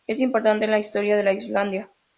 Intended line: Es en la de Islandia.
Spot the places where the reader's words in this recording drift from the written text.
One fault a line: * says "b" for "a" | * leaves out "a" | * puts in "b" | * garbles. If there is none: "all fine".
* puts in "importante"
* puts in "historia"